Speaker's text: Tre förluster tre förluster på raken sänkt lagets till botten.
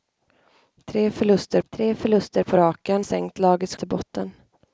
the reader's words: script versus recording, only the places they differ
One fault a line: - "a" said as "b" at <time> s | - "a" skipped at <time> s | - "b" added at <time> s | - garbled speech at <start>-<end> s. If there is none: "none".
none